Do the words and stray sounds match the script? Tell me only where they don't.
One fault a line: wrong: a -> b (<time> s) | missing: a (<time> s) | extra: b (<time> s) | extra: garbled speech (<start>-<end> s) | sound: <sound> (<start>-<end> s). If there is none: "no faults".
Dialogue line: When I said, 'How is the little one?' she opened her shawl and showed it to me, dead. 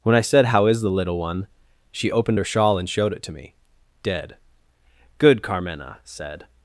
extra: Good Carmena said (5.2 s)